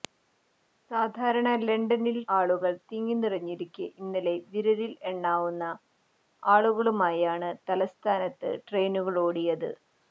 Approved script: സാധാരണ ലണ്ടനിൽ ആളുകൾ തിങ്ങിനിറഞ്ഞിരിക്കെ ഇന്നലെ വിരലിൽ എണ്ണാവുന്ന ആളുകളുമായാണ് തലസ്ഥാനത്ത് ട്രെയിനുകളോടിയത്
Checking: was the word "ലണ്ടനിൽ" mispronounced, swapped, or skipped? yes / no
no